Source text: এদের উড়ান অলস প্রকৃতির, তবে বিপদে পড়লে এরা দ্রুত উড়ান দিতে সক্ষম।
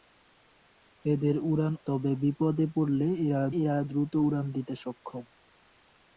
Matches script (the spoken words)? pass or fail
fail